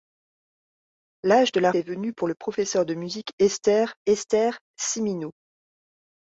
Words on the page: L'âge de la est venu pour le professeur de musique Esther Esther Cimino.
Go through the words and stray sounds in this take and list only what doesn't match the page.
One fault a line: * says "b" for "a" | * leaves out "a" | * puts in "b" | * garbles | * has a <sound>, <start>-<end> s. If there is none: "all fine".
all fine